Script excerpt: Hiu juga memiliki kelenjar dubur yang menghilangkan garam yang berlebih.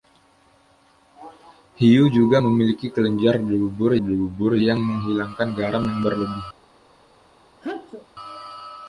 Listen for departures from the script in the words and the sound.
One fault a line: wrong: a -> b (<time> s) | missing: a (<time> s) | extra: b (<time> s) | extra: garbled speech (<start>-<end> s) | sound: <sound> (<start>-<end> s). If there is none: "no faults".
extra: dubur (4.0 s)
sound: sneeze (7.6-8.1 s)